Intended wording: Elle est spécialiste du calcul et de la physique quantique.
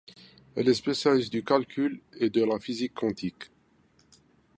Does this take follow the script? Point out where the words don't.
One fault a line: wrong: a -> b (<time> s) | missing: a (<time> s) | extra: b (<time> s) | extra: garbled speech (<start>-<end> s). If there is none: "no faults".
no faults